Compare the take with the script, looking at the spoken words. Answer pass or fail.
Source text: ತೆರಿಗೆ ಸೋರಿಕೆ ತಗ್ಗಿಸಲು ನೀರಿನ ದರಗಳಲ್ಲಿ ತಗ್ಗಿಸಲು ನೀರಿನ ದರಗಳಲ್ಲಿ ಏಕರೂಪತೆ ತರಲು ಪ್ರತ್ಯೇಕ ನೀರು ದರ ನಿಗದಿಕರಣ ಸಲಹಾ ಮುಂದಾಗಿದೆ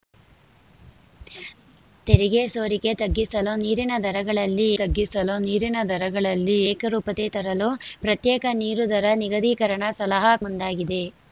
pass